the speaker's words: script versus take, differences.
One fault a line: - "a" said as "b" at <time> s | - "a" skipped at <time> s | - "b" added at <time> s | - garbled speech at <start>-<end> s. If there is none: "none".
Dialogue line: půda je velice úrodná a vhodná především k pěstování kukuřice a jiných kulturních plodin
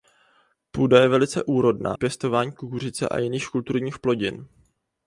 - "a vhodná především" skipped at 1.9 s